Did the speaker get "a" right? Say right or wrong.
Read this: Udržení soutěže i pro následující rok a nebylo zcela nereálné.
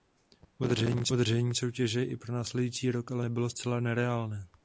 wrong